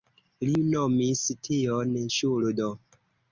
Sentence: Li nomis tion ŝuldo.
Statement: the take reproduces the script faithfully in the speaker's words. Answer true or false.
true